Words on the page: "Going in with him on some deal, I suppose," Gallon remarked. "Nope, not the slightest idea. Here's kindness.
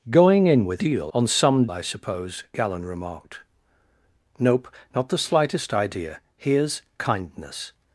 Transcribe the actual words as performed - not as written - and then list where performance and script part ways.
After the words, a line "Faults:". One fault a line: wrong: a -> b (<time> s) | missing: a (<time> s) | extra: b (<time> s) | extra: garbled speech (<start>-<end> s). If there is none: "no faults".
"Going in with deal on some I suppose," Gallon remarked. "Nope, not the slightest idea. Here's kindness.
Faults:
wrong: him -> deal (0.8 s)
missing: deal (1.7 s)